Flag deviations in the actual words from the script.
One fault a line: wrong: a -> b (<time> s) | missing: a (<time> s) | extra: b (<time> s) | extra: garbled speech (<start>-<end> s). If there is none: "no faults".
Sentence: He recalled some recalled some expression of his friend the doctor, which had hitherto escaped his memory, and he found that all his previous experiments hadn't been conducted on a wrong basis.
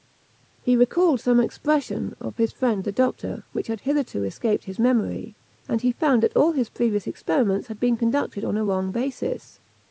missing: recalled some (1.4 s)
wrong: hadn't -> had (7.7 s)